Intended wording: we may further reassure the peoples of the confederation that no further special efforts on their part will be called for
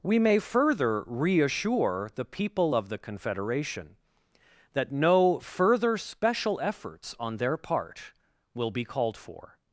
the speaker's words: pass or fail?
fail